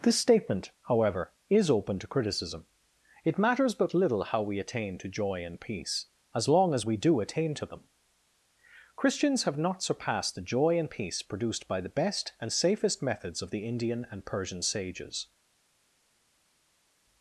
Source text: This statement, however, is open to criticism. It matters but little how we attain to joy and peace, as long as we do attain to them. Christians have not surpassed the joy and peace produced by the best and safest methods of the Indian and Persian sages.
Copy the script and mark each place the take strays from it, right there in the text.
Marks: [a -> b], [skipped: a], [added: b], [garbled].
This statement, however, is open to criticism. It matters but little how we attain to joy and peace, as long as we do attain to them. Christians have not surpassed the joy and peace produced by the best and safest methods of the Indian and Persian sages.